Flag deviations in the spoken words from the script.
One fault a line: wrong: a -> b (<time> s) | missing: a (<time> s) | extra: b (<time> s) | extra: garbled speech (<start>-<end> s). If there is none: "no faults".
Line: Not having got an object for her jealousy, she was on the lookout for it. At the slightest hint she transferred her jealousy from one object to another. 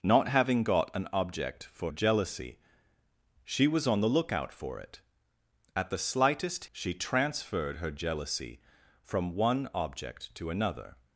missing: her (1.9 s)
missing: hint (6.7 s)